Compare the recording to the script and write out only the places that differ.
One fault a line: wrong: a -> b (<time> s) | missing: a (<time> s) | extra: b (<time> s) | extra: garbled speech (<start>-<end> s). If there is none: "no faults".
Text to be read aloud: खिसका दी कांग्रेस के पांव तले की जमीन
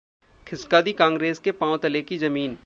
no faults